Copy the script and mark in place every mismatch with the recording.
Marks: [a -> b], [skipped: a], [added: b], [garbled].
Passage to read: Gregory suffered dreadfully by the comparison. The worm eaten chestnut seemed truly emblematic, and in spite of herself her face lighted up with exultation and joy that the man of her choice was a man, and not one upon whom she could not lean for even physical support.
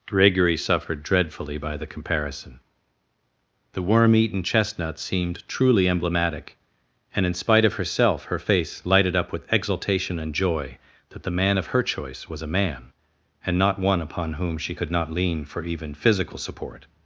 Gregory suffered dreadfully by the comparison. The worm eaten chestnut seemed truly emblematic, and in spite of herself her face lighted up with exultation and joy that the man of her choice was a man, and not one upon whom she could not lean for even physical support.